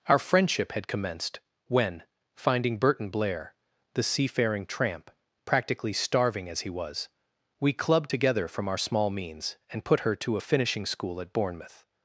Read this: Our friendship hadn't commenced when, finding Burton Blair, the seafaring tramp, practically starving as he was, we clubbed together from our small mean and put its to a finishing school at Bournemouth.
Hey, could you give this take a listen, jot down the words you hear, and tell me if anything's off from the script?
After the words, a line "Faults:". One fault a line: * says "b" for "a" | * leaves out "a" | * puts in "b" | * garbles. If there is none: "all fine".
Our friendship had commenced when, finding Burton Blair, the seafaring tramp, practically starving as he was, we clubbed together from our small means and put her to a finishing school at Bournemouth.
Faults:
* says "had" for "hadn't"
* says "means" for "mean"
* says "her" for "its"